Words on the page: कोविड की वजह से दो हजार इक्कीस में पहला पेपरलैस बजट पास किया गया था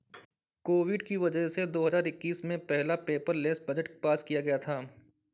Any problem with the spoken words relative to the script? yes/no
no